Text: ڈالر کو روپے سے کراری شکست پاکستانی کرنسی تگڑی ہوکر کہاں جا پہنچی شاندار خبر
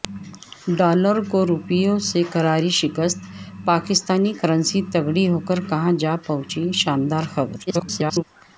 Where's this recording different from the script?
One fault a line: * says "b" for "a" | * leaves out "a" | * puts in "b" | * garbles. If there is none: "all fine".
* garbles